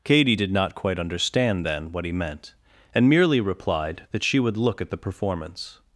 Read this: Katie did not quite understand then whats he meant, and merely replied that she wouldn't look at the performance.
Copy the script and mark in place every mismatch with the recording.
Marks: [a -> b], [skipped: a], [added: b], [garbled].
Katie did not quite understand then [whats -> what] he meant, and merely replied that she [wouldn't -> would] look at the performance.